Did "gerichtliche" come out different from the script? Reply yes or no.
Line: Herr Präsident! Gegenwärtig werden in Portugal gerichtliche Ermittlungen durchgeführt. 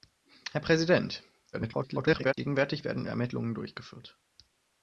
yes